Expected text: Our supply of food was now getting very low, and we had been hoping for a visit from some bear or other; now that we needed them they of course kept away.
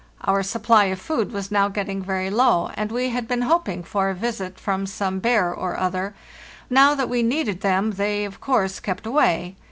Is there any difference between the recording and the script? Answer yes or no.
no